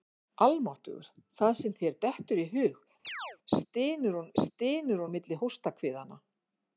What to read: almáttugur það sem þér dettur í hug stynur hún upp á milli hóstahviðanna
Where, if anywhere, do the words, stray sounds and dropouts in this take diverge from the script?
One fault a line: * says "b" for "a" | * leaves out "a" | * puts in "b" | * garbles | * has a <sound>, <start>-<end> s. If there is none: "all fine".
* has a chirp, 3.0-3.4 s
* says "stynur" for "upp"